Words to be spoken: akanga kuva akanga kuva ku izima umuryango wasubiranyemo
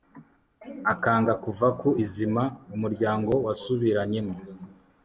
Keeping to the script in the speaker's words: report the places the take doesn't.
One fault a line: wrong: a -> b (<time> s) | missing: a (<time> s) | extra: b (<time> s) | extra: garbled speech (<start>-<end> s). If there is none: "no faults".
missing: akanga kuva (1.7 s)